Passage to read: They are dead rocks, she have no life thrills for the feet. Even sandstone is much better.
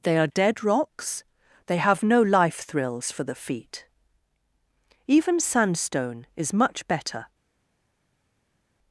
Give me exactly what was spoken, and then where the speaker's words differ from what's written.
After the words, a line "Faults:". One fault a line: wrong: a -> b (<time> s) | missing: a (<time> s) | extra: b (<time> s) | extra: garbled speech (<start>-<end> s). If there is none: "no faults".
They are dead rocks, they have no life thrills for the feet. Even sandstone is much better.
Faults:
wrong: she -> they (1.6 s)